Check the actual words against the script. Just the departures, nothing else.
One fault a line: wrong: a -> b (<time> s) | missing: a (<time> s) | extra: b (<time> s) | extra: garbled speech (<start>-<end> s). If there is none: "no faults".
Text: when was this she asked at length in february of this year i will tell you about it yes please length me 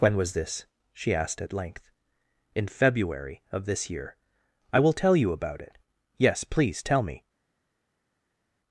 wrong: length -> tell (6.8 s)